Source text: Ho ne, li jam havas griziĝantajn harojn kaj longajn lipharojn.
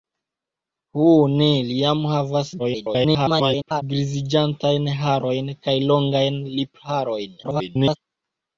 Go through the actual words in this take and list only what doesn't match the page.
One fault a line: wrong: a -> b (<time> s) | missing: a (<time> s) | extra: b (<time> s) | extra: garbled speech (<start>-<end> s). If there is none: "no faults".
extra: garbled speech (2.6-3.8 s)
extra: garbled speech (7.4-8.0 s)